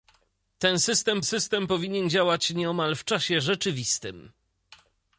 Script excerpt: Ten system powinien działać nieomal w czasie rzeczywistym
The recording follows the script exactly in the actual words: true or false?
false